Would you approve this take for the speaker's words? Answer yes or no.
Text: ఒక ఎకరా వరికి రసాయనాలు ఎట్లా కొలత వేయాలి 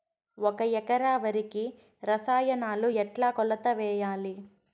yes